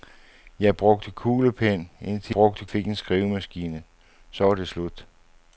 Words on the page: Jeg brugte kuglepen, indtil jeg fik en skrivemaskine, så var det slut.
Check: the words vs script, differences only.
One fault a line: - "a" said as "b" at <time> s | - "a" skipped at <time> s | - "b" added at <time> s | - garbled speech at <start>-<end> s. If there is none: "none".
- "jeg" said as "brugte" at 2.3 s